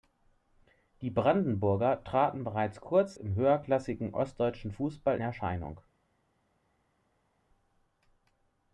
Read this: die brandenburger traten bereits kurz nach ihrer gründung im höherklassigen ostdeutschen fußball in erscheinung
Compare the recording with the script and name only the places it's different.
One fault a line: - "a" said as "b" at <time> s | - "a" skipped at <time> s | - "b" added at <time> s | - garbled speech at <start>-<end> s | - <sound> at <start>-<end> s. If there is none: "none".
- "nach ihrer gründung" skipped at 3.2 s
- "in" skipped at 5.2 s